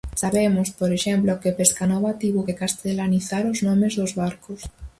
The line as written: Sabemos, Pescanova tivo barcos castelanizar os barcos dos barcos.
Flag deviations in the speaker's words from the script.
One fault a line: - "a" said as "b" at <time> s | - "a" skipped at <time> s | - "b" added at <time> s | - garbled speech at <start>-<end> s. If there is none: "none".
- "por exemplo que" added at 0.8 s
- "barcos" said as "que" at 2.5 s
- "barcos" said as "nomes" at 3.7 s